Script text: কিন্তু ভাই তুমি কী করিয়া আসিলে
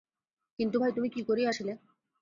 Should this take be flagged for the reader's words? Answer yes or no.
no